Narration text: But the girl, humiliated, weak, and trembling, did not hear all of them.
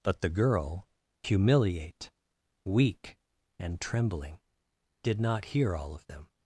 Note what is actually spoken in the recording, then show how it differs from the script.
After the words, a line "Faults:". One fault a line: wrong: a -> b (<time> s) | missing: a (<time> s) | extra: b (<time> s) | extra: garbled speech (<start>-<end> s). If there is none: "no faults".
But the girl, humiliate, weak, and trembling, did not hear all of them.
Faults:
wrong: humiliated -> humiliate (1.2 s)